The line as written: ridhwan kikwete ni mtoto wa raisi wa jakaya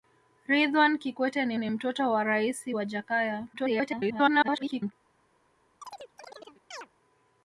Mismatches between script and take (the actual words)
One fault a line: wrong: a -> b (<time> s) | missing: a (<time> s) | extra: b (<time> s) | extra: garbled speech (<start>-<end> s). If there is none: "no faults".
extra: ni (1.6 s)
extra: garbled speech (3.5-4.9 s)